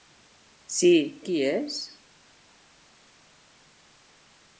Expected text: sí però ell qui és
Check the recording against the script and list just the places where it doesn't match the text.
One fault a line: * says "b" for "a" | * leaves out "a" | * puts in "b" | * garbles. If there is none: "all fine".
* leaves out "però ell"